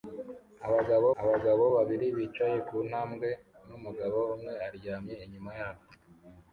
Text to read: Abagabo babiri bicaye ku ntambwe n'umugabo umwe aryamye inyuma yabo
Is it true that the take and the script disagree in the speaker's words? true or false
true